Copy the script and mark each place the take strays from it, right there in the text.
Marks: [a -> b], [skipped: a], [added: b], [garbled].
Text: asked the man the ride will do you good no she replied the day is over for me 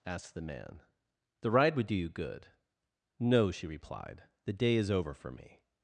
asked the man the ride [will -> would] do you good no she replied the day is over for me